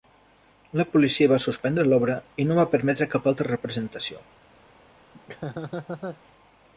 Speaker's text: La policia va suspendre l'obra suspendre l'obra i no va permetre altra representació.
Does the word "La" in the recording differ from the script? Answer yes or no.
no